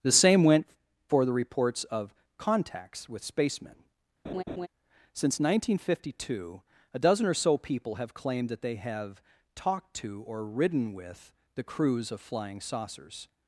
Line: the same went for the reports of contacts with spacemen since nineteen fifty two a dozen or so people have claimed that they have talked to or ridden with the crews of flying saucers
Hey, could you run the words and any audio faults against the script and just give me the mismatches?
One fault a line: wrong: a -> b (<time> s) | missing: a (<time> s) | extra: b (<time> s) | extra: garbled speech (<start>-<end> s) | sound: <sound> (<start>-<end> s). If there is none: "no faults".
sound: laugh (4.2-4.7 s)